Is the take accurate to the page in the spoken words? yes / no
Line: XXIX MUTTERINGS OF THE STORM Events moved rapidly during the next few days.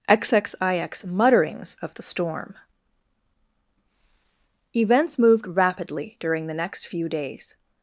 yes